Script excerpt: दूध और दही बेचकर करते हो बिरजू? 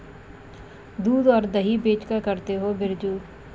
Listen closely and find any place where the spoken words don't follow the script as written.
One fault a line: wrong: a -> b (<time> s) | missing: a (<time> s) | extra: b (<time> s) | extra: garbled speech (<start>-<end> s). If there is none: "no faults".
no faults